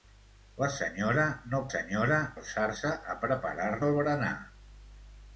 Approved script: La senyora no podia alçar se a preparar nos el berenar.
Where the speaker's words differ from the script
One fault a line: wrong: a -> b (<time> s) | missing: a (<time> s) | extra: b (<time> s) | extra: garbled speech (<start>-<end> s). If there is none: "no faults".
wrong: podia -> senyora (1.7 s)
missing: nos (3.7 s)